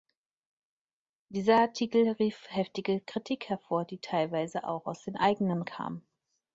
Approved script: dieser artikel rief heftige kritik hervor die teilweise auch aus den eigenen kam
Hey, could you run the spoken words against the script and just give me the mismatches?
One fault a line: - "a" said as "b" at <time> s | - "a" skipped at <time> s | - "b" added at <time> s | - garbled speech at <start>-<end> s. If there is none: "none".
none